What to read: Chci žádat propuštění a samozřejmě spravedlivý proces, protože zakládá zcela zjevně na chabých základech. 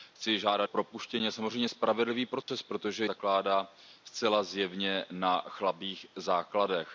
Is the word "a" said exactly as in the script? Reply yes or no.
yes